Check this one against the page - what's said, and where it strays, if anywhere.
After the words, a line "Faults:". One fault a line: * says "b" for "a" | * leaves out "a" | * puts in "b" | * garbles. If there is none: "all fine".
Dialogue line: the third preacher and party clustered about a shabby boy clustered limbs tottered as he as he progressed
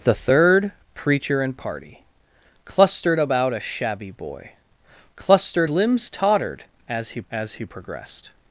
the third preacher and party clustered about a shabby boy clustered limbs tottered as he as he progressed
Faults:
all fine